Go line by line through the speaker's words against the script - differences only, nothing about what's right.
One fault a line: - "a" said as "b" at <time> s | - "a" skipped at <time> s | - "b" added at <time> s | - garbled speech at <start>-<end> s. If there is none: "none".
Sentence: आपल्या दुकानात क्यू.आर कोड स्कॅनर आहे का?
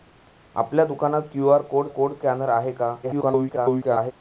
- "कोड" added at 1.9 s
- garbled speech at 3.0-4.1 s